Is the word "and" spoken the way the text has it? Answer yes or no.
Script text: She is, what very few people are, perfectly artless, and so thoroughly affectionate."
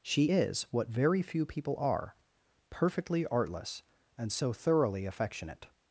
yes